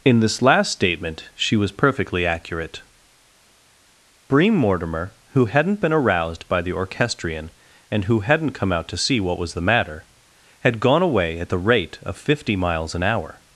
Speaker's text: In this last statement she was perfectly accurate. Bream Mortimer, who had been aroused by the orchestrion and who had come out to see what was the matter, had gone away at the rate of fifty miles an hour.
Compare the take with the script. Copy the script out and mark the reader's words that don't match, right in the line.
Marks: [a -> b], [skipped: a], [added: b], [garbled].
In this last statement she was perfectly accurate. Bream Mortimer, who [had -> hadn't] been aroused by the orchestrion and who [had -> hadn't] come out to see what was the matter, had gone away at the rate of fifty miles an hour.